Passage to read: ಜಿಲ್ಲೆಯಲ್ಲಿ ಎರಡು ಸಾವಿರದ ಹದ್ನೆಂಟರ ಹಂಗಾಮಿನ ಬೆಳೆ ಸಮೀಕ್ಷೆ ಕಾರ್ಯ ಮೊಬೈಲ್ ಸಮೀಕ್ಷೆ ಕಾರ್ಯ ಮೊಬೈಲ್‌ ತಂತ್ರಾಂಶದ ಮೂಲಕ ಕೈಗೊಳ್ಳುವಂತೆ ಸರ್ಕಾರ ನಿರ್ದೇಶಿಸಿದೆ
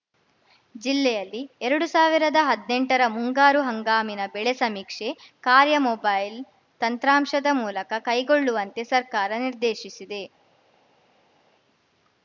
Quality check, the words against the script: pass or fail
fail